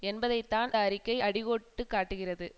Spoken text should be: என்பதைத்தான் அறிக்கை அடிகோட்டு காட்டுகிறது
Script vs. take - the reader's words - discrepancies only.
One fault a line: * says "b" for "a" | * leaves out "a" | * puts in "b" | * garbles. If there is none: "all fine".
all fine